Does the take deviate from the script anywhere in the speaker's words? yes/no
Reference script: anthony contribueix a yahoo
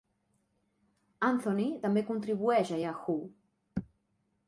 yes